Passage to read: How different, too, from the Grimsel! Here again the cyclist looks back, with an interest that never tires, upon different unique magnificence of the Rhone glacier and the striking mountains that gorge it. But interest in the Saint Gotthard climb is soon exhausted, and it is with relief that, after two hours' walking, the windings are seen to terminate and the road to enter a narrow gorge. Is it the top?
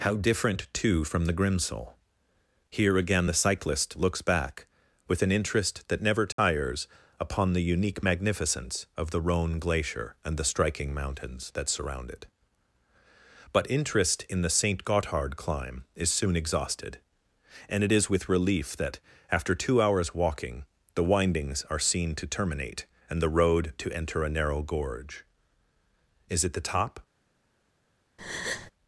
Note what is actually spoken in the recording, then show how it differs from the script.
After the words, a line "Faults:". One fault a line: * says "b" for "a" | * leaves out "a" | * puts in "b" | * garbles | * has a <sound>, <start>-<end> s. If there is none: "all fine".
How different, too, from the Grimsel! Here again the cyclist looks back, with an interest that never tires, upon the unique magnificence of the Rhone glacier and the striking mountains that surround it. But interest in the Saint Gotthard climb is soon exhausted, and it is with relief that, after two hours' walking, the windings are seen to terminate and the road to enter a narrow gorge. Is it the top?
Faults:
* has a dropout, 6.3-6.4 s
* says "the" for "different"
* says "surround" for "gorge"
* has a breath, 28.2-28.7 s